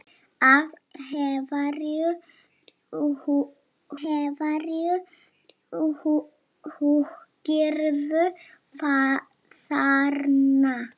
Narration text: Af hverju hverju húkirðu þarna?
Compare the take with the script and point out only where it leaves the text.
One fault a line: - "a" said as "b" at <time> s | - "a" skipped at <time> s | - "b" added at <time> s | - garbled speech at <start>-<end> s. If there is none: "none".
none